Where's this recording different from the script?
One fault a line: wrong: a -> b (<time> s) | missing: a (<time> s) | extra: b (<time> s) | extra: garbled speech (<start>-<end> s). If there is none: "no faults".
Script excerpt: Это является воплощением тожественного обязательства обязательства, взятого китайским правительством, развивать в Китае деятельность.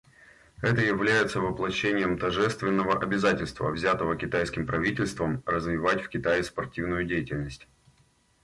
missing: обязательства (3.7 s)
extra: спортивную (6.4 s)